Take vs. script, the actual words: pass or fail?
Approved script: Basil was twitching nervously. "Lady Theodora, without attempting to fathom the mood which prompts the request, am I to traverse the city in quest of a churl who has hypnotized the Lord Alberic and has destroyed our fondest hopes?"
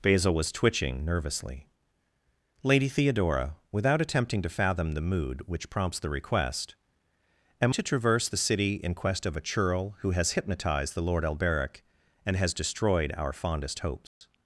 fail